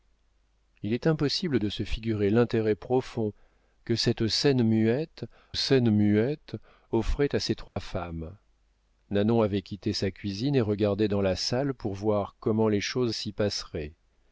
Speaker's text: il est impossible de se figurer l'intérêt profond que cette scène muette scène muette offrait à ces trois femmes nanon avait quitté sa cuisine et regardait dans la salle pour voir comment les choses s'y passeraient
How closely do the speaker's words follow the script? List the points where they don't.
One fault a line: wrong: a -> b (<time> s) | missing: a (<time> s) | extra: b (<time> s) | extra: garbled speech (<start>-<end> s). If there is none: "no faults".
no faults